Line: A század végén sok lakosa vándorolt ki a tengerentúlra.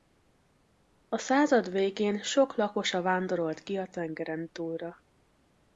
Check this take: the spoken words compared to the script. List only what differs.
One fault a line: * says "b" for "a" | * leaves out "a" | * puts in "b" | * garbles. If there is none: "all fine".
all fine